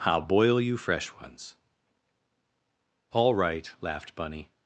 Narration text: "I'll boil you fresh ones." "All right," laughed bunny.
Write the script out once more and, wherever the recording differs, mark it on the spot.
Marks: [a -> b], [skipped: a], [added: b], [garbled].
"I'll boil you fresh ones." "All right," laughed bunny.